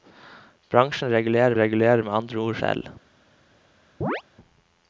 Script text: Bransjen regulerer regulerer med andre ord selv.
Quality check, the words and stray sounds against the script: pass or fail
fail